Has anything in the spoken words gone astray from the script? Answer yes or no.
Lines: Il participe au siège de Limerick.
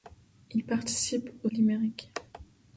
yes